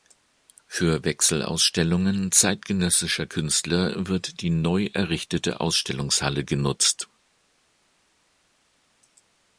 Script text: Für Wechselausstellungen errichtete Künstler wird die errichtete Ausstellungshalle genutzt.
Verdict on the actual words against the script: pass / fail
fail